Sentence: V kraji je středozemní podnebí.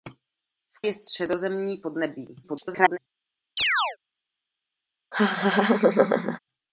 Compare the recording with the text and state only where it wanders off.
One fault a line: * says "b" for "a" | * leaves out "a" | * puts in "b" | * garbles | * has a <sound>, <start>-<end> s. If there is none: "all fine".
* leaves out "kraji"
* garbles
* has a chirp, 3.6-4.0 s
* has a laugh, 5.1-6.4 s